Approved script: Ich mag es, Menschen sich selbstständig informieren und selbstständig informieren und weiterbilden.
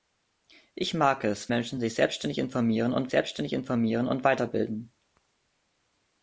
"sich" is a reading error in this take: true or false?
false